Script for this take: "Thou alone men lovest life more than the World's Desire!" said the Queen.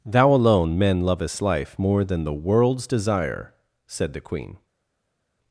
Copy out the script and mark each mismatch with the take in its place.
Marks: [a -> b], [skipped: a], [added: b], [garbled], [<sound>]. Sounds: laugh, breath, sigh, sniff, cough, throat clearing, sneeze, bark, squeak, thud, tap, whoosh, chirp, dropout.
"Thou alone men lovest life more than the World's Desire!" said the Queen.